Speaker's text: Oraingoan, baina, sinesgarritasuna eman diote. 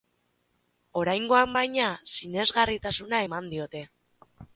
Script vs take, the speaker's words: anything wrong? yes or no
no